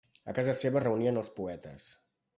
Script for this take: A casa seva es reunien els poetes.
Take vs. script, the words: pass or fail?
pass